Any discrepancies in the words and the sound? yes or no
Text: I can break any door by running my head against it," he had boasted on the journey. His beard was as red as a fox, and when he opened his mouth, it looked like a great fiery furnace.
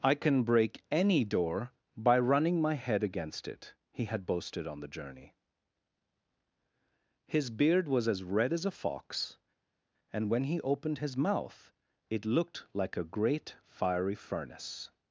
no